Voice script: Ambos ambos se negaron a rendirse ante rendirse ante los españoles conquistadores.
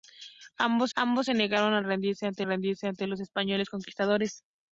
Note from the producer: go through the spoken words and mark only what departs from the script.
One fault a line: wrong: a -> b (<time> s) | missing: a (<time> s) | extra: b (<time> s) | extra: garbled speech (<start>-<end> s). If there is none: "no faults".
no faults